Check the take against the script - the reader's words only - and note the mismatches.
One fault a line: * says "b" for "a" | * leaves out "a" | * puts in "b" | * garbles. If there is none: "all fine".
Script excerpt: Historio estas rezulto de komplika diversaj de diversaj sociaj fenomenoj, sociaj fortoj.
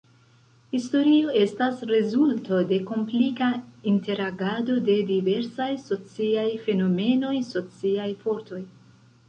* says "interagado" for "diversaj"